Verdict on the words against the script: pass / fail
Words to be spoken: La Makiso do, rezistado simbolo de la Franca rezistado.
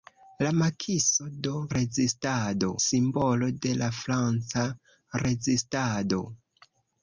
pass